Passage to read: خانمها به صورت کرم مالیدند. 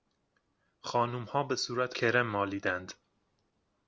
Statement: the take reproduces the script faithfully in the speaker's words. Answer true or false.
true